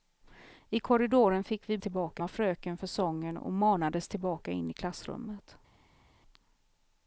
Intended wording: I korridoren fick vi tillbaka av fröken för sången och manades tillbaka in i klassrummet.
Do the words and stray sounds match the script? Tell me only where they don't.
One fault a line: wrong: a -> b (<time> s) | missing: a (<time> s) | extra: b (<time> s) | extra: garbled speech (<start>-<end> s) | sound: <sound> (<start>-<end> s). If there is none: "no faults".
no faults